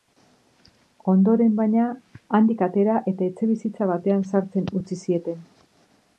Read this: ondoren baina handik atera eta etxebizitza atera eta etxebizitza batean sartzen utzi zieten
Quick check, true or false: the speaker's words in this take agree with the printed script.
false